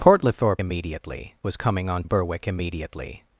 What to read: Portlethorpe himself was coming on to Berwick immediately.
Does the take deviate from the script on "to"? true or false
true